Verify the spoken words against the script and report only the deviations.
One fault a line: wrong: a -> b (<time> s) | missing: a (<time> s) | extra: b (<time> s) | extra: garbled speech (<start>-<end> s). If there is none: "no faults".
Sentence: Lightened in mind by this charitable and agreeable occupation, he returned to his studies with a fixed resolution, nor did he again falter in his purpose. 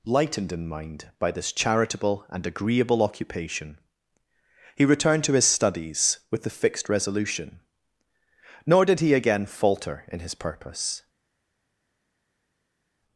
wrong: a -> the (6.4 s)